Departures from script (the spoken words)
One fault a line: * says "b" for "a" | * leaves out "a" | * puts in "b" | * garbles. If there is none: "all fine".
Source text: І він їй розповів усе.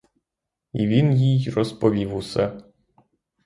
all fine